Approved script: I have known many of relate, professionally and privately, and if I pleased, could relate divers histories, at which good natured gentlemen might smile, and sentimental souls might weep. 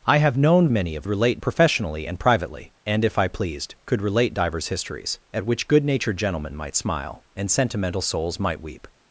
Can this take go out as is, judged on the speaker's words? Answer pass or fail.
pass